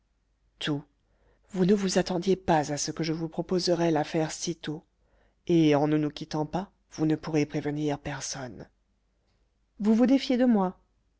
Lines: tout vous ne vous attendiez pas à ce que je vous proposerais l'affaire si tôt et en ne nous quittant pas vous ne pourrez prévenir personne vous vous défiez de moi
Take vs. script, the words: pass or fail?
pass